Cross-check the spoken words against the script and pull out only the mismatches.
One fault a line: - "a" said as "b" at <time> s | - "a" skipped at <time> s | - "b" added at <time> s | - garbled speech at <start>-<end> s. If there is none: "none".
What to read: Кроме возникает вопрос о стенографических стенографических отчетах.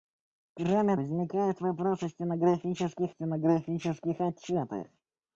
none